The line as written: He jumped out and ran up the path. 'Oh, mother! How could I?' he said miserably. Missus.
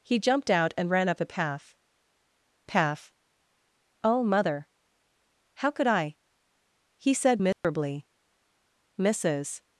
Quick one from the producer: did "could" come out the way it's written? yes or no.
yes